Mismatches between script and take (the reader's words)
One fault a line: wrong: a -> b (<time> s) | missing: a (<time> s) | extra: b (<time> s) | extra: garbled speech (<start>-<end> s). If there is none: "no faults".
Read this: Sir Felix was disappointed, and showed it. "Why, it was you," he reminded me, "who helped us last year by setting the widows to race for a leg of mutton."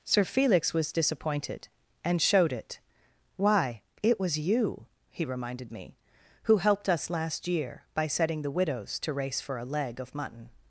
no faults